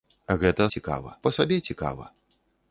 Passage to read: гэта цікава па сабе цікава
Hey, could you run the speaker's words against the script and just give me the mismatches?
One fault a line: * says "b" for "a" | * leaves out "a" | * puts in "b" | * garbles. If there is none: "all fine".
all fine